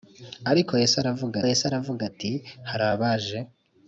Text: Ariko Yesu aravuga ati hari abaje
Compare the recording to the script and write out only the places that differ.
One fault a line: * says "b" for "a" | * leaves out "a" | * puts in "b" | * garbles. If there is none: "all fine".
* puts in "Yesu aravuga"